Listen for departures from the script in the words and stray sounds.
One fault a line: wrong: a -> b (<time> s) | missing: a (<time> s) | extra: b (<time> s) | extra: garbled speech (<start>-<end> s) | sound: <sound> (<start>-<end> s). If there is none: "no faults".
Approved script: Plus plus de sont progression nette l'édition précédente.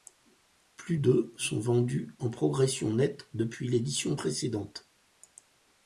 missing: plus (1.0 s)
extra: vendus en (1.6 s)
extra: depuis (3.3 s)